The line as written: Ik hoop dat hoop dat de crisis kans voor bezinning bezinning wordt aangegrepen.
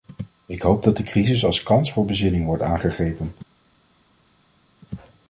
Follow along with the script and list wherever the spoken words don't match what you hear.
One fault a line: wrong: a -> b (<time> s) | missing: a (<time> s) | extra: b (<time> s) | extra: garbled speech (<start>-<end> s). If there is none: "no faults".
missing: hoop dat (1.0 s)
extra: als (1.4 s)
missing: bezinning (2.4 s)